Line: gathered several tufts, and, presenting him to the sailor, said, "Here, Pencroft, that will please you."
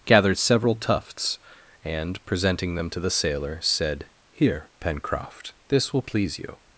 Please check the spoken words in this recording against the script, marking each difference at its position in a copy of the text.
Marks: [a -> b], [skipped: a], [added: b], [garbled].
gathered several tufts, and, presenting [him -> them] to the sailor, said, "Here, Pencroft, [that -> this] will please you."